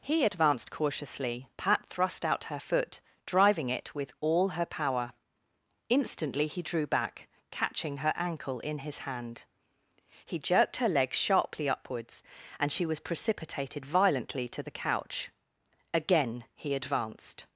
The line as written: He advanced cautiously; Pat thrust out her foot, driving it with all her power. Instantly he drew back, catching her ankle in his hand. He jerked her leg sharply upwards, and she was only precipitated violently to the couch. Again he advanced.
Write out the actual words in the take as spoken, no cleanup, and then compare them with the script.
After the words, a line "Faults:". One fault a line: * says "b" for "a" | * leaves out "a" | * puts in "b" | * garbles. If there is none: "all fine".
He advanced cautiously; Pat thrust out her foot, driving it with all her power. Instantly he drew back, catching her ankle in his hand. He jerked her leg sharply upwards, and she was precipitated violently to the couch. Again he advanced.
Faults:
* leaves out "only"